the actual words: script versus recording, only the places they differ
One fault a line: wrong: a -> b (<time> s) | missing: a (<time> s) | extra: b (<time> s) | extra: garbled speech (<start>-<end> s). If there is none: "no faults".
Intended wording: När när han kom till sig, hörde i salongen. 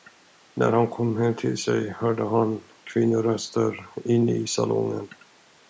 missing: när (0.7 s)
extra: hem (1.2 s)
extra: han kvinnoröster inne (2.3 s)